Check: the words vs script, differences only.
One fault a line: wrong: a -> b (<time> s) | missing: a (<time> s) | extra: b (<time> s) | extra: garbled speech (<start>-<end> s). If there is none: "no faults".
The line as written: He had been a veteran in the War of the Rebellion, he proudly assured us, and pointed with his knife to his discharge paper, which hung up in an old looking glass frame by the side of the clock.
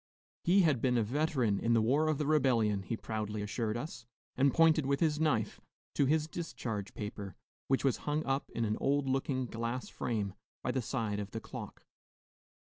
extra: was (7.8 s)